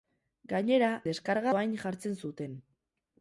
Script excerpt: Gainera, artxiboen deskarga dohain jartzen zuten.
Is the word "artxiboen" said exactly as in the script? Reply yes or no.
no